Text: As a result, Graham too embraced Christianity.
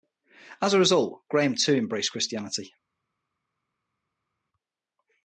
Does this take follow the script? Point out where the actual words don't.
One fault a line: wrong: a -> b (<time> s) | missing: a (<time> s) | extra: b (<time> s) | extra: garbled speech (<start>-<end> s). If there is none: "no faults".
no faults